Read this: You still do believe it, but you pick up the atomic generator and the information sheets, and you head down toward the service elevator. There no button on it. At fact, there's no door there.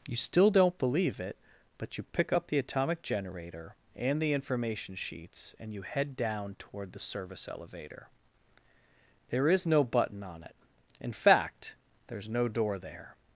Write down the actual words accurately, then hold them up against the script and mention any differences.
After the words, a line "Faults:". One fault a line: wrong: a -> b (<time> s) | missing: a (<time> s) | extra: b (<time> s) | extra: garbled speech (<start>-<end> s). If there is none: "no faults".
You still don't believe it, but you pick up the atomic generator and the information sheets, and you head down toward the service elevator. There is no button on it. In fact, there's no door there.
Faults:
wrong: do -> don't (0.5 s)
extra: is (9.5 s)
wrong: At -> In (11.0 s)